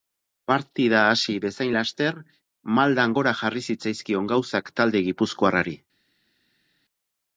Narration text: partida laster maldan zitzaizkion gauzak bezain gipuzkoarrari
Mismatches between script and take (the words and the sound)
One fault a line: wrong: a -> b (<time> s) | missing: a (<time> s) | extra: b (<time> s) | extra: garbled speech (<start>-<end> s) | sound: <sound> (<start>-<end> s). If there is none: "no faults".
extra: hasi bezain (1.1 s)
extra: gora jarri (3.2 s)
wrong: bezain -> talde (4.8 s)